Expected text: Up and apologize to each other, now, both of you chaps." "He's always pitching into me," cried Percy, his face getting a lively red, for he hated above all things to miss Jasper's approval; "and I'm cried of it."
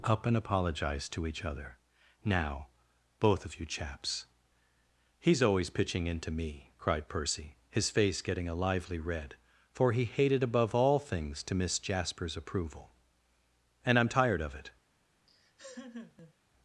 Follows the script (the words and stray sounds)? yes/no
no